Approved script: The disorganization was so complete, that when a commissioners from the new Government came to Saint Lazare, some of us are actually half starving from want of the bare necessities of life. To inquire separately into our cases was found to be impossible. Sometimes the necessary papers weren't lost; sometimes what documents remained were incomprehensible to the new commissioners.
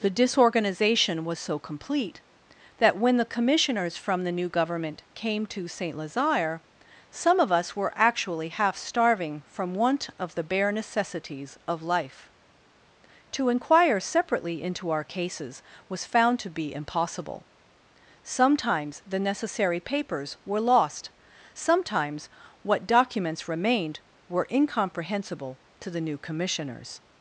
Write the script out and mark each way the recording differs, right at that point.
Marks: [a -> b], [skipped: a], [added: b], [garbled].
The disorganization was so complete, that when [a -> the] commissioners from the new Government came to Saint Lazare, some of us [are -> were] actually half starving from want of the bare necessities of life. To inquire separately into our cases was found to be impossible. Sometimes the necessary papers [weren't -> were] lost; sometimes what documents remained were incomprehensible to the new commissioners.